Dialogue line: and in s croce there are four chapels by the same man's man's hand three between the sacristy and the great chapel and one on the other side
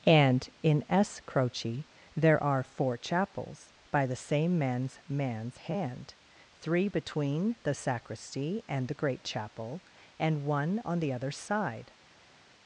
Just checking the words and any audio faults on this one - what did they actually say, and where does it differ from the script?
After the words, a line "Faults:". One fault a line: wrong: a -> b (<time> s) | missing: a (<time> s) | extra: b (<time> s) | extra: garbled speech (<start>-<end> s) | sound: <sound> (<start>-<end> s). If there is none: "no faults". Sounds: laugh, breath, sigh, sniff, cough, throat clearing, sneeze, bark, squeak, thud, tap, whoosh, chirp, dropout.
and in s croce there are four chapels by the same man's man's hand three between the sacristy and the great chapel and one on the other side
Faults:
no faults